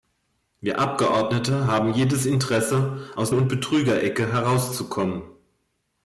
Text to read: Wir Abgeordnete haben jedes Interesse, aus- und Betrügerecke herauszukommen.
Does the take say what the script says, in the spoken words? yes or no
yes